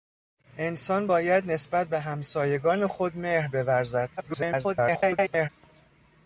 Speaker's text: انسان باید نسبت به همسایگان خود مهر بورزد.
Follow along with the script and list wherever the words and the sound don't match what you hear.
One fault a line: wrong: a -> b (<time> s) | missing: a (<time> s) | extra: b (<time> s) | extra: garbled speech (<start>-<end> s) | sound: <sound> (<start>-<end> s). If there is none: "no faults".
extra: garbled speech (4.2-5.5 s)